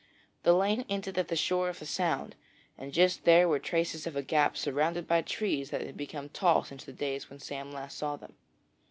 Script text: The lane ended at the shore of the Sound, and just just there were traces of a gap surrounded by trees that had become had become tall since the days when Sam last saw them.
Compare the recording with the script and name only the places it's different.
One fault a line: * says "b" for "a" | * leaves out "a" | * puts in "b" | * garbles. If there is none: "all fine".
* leaves out "just"
* leaves out "had become"